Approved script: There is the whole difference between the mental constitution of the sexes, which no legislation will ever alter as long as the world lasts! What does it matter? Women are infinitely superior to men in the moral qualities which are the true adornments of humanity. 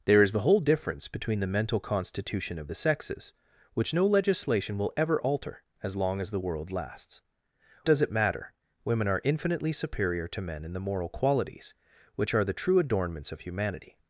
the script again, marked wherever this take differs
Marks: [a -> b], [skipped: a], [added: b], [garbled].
There is the whole difference between the mental constitution of the sexes, which no legislation will ever alter as long as the world lasts! [skipped: What] does it matter? Women are infinitely superior to men in the moral qualities which are the true adornments of humanity.